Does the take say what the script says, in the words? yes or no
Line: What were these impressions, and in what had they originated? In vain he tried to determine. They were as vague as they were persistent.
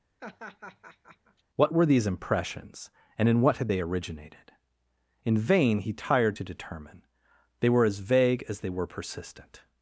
no